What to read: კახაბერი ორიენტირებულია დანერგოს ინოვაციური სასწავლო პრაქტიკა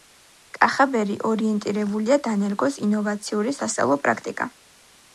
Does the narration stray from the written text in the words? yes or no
no